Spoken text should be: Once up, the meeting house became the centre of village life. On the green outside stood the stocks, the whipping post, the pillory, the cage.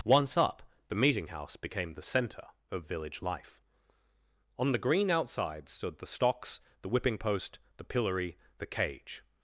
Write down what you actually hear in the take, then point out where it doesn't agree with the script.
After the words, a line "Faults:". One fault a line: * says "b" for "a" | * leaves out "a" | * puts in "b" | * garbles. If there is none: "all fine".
Once up, the meeting house became the centre of village life. On the green outside stood the stocks, the whipping post, the pillory, the cage.
Faults:
all fine